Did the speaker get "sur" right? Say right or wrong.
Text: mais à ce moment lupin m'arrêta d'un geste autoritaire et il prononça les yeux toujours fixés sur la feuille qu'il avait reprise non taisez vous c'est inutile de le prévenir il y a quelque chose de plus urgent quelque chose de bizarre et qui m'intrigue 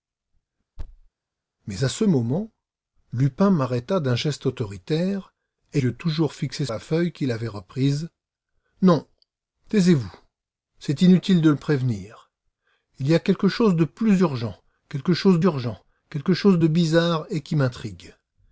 wrong